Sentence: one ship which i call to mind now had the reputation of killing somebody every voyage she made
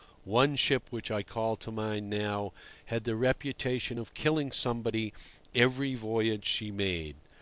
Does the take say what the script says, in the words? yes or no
yes